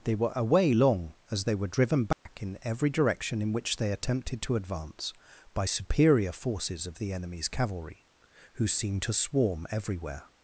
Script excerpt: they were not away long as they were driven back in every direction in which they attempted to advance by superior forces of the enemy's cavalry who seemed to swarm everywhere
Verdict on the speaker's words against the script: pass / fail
fail